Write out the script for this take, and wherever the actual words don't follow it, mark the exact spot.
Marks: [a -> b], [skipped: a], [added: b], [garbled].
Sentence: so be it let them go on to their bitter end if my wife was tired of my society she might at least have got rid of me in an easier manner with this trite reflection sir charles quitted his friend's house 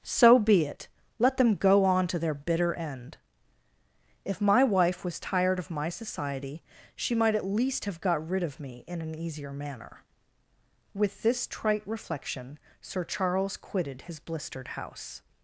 so be it let them go on to their bitter end if my wife was tired of my society she might at least have got rid of me in an easier manner with this trite reflection sir charles quitted his [friend's -> blistered] house